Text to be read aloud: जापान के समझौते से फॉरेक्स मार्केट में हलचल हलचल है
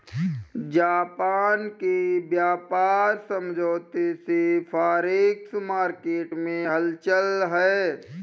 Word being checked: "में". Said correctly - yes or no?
yes